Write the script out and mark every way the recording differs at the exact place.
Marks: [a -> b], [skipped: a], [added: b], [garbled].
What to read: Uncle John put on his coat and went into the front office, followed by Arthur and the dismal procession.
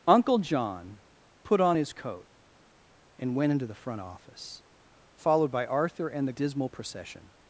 Uncle John put on his coat and went into the front office, followed by Arthur and the dismal procession.